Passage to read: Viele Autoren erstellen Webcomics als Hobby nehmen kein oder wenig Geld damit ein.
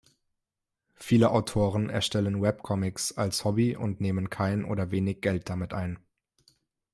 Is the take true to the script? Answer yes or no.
no